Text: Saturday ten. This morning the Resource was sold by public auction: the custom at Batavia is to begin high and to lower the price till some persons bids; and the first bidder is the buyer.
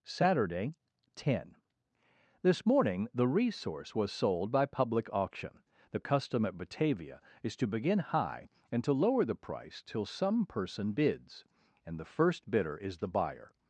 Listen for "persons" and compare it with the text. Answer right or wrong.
wrong